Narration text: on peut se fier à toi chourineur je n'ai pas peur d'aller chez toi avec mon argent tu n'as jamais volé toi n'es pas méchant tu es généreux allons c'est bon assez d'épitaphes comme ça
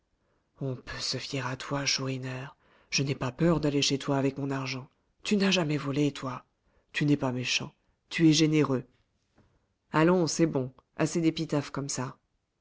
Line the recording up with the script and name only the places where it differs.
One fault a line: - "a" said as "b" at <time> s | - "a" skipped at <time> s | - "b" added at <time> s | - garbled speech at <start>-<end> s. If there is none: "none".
- "tu" added at 6.9 s